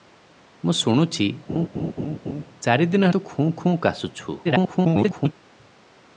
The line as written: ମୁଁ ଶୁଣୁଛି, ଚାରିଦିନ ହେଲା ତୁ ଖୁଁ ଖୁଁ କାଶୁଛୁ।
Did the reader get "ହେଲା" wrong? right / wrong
wrong